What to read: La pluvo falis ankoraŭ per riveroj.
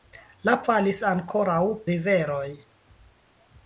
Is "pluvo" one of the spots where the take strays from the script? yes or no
yes